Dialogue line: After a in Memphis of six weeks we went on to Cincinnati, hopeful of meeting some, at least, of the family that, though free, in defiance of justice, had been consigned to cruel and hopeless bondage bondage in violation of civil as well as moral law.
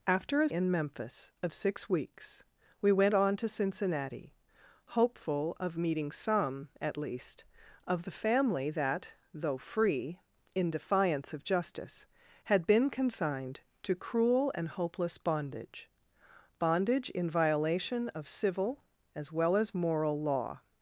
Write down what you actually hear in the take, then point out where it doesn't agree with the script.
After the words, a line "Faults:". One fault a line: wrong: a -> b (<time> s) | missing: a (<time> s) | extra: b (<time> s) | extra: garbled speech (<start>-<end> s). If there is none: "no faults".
After a in Memphis of six weeks we went on to Cincinnati, hopeful of meeting some, at least, of the family that, though free, in defiance of justice, had been consigned to cruel and hopeless bondage bondage in violation of civil as well as moral law.
Faults:
no faults